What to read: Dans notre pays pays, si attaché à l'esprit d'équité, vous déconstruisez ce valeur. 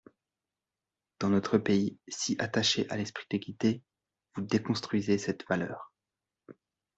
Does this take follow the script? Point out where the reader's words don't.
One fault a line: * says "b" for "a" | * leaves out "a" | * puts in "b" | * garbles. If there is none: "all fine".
* leaves out "pays"
* says "cette" for "ce"